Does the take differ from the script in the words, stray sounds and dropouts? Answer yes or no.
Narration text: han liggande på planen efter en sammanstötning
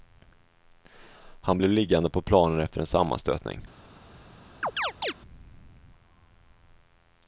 yes